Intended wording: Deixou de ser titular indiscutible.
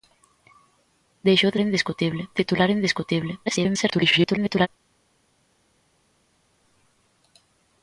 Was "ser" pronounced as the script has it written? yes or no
no